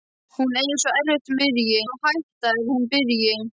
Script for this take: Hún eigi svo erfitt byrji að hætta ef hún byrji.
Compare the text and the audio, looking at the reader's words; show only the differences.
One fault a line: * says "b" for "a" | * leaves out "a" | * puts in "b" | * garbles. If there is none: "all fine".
all fine